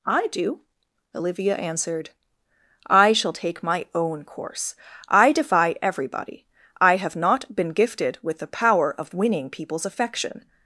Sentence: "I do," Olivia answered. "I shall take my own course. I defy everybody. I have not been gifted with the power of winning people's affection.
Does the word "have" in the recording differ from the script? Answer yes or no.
no